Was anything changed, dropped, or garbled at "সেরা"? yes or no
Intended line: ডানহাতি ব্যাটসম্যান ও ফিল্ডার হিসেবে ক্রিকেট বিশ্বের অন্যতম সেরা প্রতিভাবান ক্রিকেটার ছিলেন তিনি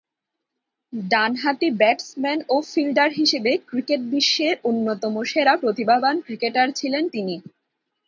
no